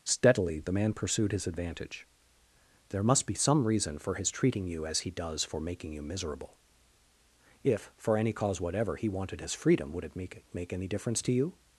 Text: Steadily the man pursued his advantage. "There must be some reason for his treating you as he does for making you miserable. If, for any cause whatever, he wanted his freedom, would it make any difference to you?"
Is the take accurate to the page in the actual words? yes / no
no